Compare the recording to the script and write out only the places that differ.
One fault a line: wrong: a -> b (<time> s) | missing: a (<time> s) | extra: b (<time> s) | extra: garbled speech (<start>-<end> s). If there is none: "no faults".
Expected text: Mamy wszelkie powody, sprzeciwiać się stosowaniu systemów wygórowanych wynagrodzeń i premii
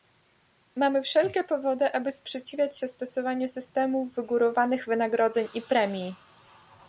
extra: aby (1.9 s)